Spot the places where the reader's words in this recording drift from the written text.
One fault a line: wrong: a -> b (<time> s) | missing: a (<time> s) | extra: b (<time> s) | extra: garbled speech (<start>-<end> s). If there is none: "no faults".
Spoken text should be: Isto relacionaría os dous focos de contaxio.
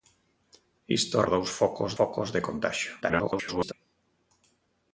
missing: relacionaría (1.2 s)
extra: focos (2.0 s)
extra: garbled speech (3.0-3.7 s)